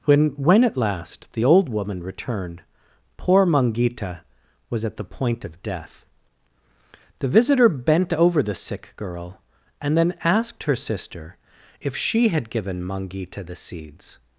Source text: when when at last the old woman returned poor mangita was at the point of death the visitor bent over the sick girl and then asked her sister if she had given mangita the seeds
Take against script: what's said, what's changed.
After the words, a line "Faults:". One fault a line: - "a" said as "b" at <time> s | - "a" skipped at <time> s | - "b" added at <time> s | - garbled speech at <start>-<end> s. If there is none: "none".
when when at last the old woman returned poor mangita was at the point of death the visitor bent over the sick girl and then asked her sister if she had given mangita the seeds
Faults:
none